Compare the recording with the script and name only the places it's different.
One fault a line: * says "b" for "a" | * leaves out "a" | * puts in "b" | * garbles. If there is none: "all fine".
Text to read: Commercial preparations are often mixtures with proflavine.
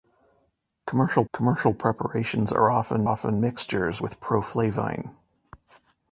* puts in "commercial"
* puts in "often"